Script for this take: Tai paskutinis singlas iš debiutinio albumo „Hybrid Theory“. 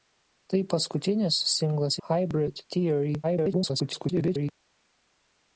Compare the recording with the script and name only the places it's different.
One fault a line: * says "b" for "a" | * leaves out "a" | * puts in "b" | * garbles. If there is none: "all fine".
* leaves out "iš debiutinio albumo"
* garbles